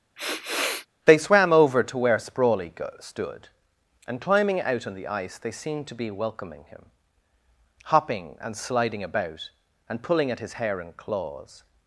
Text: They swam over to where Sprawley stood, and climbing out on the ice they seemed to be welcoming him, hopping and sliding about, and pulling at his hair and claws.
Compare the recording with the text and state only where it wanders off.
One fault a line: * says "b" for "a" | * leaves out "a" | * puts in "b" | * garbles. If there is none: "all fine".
all fine